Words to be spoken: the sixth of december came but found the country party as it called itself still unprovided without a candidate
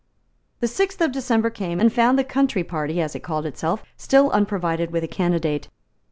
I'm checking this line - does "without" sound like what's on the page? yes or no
no